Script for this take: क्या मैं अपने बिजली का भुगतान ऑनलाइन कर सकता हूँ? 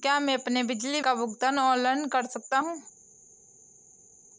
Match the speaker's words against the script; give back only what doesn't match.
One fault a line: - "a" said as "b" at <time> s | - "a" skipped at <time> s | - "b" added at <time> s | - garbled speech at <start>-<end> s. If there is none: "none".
none